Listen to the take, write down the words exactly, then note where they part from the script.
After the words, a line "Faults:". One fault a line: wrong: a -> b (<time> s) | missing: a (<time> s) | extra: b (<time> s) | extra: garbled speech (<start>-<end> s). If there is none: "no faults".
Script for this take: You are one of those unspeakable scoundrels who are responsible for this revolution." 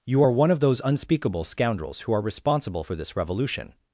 You are one of those unspeakable scoundrels who are responsible for this revolution."
Faults:
no faults